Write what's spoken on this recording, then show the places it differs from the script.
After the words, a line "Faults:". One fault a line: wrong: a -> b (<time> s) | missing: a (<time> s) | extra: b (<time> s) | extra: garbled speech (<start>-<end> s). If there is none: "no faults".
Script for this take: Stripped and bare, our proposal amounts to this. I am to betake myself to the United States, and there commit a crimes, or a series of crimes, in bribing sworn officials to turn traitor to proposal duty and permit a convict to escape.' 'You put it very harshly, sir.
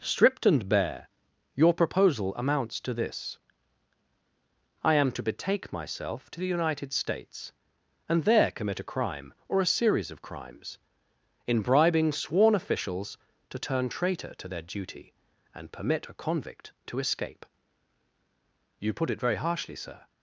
Stripped and bare, your proposal amounts to this. I am to betake myself to the United States, and there commit a crime, or a series of crimes, in bribing sworn officials to turn traitor to their duty and permit a convict to escape.' 'You put it very harshly, sir.
Faults:
wrong: our -> your (1.5 s)
wrong: crimes -> crime (8.9 s)
wrong: proposal -> their (14.5 s)